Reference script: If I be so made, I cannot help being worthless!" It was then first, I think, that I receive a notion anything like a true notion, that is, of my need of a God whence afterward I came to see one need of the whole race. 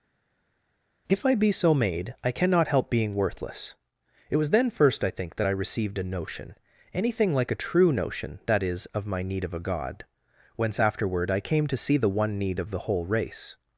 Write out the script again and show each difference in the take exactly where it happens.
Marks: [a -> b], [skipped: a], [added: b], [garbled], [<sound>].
If I be so made, I cannot help being worthless!" It was then first, I think, that I [receive -> received] a notion anything like a true notion, that is, of my need of a God whence afterward I came to see [added: the] one need of the whole race.